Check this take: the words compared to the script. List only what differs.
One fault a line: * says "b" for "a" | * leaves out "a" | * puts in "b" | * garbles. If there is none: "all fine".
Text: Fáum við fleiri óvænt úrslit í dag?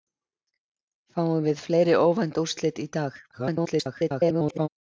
* garbles